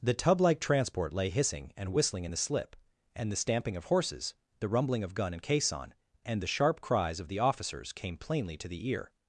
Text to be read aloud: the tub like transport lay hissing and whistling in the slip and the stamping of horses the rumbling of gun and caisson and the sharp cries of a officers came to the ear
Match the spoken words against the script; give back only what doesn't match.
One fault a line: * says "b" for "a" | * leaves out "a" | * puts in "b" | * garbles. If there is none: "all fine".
* says "the" for "a"
* puts in "plainly"